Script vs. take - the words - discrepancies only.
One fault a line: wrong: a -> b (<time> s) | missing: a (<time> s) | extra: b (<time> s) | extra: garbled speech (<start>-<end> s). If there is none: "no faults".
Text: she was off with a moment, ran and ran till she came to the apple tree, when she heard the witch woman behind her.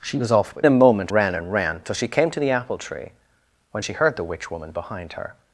no faults